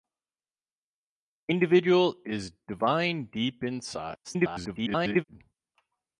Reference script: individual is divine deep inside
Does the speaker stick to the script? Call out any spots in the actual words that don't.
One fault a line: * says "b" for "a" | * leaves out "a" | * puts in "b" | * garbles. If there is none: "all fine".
* garbles